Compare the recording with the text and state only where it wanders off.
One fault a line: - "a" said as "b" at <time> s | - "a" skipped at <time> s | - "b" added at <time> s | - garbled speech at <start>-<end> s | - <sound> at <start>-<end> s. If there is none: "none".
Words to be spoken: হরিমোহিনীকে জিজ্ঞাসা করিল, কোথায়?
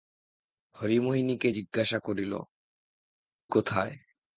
none